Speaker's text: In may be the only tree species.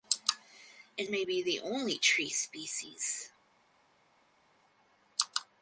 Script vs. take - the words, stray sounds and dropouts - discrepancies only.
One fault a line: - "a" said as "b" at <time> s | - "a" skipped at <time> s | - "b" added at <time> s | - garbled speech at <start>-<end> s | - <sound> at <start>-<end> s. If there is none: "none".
none